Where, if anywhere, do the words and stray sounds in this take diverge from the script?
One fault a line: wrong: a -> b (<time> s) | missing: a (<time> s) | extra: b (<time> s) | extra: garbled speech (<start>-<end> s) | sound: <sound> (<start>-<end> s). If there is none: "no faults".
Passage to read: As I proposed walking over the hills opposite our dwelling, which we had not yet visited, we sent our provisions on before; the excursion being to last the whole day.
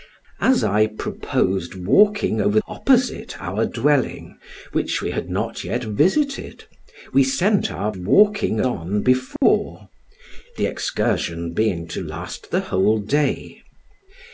missing: the hills (2.6 s)
wrong: provisions -> walking (7.9 s)
sound: dropout (9.4-9.4 s)